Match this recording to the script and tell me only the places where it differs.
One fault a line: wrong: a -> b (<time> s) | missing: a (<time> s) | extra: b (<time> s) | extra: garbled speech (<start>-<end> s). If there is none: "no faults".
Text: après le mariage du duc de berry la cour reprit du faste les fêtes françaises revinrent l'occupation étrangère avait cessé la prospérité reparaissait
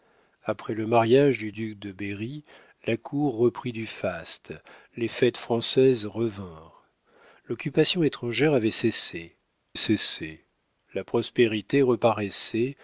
extra: cessé (9.7 s)